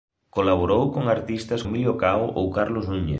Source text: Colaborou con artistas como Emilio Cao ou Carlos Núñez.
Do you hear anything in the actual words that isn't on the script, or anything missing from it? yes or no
yes